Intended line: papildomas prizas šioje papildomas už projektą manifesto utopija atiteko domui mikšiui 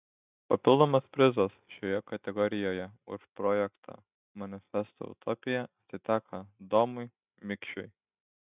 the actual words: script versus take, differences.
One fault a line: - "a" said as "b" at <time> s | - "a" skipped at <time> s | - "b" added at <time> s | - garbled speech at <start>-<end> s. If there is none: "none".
- "papildomas" said as "kategorijoje" at 2.1 s